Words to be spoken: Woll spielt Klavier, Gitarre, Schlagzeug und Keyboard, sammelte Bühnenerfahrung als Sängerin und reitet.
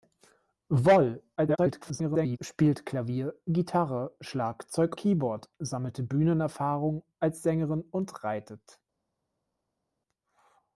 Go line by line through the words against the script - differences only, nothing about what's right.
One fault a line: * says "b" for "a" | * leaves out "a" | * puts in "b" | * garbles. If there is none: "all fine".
* garbles
* leaves out "und"